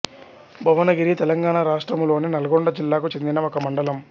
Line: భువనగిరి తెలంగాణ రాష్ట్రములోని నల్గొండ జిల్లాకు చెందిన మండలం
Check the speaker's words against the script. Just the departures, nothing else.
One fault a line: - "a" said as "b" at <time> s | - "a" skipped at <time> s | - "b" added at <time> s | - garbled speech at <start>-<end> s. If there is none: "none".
- "ఒక" added at 3.5 s